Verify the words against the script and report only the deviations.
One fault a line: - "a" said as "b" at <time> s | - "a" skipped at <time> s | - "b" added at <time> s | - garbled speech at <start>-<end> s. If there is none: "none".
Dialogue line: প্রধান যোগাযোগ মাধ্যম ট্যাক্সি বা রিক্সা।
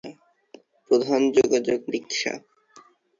- "মাধ্যম ট্যাক্সি বা" skipped at 1.8 s